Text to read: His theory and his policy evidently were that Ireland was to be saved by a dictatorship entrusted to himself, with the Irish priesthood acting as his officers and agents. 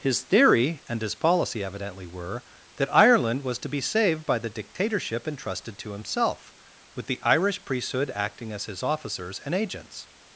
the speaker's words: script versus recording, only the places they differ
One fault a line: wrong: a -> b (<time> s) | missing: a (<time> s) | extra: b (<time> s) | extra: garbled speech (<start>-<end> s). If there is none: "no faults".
wrong: a -> the (4.4 s)